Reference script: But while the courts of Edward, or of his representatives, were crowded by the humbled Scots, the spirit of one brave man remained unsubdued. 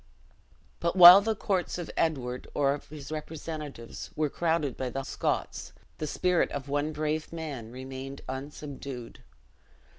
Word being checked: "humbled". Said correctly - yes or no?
no